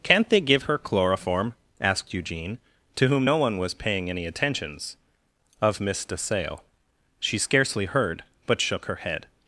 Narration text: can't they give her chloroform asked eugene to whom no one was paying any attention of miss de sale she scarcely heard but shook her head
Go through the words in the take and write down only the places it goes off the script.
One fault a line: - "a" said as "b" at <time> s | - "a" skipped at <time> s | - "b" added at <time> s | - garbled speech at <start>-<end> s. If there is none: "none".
- "attention" said as "attentions" at 4.3 s